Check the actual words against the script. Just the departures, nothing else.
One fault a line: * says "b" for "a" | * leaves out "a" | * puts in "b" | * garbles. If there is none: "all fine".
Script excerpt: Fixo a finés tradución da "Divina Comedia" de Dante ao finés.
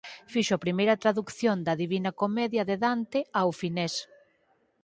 * says "primeira" for "finés"